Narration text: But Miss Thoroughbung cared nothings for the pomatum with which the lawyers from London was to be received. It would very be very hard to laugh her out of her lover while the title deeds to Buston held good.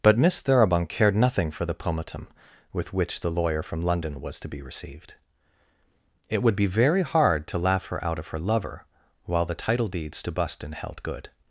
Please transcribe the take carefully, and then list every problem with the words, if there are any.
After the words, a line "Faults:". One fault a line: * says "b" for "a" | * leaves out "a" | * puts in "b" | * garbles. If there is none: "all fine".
But Miss Thoroughbung cared nothing for the pomatum with which the lawyer from London was to be received. It would be very hard to laugh her out of her lover while the title deeds to Buston held good.
Faults:
* says "nothing" for "nothings"
* says "lawyer" for "lawyers"
* leaves out "very"